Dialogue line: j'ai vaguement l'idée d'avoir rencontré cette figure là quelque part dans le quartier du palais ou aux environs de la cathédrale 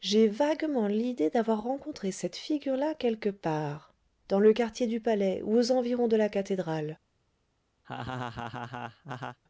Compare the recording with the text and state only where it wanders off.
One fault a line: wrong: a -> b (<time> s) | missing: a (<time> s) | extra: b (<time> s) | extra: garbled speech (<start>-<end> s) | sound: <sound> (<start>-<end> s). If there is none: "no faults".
sound: laugh (7.8-9.4 s)